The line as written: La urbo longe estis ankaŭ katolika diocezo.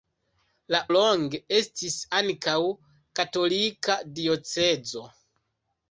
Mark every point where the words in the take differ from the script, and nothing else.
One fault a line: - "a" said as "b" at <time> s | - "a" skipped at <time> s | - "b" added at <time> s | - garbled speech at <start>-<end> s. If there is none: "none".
- "urbo" skipped at 0.8 s